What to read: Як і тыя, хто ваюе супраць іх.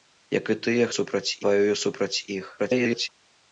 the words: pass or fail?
fail